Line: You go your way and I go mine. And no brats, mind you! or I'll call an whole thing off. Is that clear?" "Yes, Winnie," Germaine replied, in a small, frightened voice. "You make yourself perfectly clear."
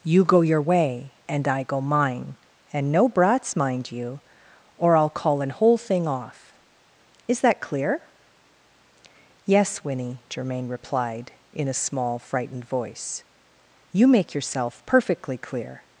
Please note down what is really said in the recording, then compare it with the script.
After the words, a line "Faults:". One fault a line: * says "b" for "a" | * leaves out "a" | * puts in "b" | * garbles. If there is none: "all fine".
You go your way and I go mine. And no brats, mind you! or I'll call an whole thing off. Is that clear?" "Yes, Winnie," Germaine replied, in a small, frightened voice. "You make yourself perfectly clear."
Faults:
all fine